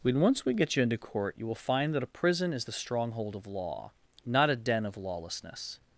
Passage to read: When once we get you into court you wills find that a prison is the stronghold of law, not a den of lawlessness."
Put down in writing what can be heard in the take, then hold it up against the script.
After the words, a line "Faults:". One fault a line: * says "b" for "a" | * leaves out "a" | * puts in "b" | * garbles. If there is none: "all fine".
When once we get you into court you will find that a prison is the stronghold of law, not a den of lawlessness."
Faults:
* says "will" for "wills"